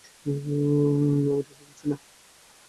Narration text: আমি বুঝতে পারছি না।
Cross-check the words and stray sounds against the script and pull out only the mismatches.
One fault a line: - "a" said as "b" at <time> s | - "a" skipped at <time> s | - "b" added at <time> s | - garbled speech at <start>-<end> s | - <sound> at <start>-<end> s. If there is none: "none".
none